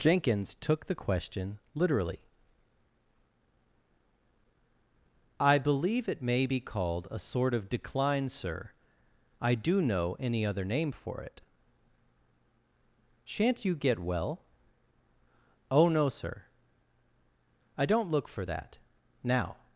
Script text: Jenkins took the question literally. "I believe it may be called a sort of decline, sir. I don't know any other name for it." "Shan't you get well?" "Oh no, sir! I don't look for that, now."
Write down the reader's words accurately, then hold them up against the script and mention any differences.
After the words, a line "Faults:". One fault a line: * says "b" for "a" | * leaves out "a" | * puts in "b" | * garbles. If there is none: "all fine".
Jenkins took the question literally. "I believe it may be called a sort of decline, sir. I do know any other name for it." "Shan't you get well?" "Oh no, sir! I don't look for that, now."
Faults:
* says "do" for "don't"